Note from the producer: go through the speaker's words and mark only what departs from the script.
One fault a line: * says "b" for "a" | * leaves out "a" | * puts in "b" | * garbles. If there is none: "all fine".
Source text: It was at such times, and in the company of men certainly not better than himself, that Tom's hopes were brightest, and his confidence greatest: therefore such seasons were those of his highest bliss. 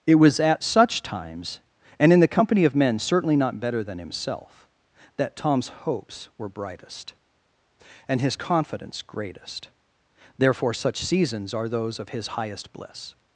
* says "are" for "were"